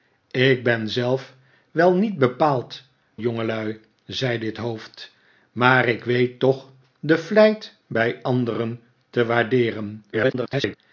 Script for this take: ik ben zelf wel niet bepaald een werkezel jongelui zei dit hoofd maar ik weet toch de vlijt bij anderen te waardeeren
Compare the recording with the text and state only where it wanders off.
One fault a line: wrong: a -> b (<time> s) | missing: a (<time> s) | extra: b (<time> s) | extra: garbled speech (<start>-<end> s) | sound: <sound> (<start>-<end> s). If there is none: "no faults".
missing: een werkezel (2.8 s)
extra: garbled speech (10.1-10.8 s)